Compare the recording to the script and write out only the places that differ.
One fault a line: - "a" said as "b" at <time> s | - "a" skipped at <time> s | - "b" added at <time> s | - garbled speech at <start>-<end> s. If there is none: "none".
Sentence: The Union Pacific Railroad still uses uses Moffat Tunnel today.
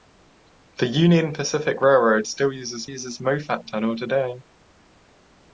none